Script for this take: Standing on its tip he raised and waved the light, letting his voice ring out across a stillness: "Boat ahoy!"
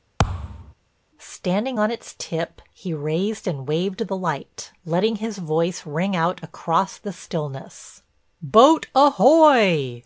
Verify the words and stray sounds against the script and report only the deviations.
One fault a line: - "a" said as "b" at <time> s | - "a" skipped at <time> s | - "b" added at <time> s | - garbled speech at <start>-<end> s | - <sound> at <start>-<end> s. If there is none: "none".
- thud at 0.2-0.7 s
- "a" said as "the" at 7.0 s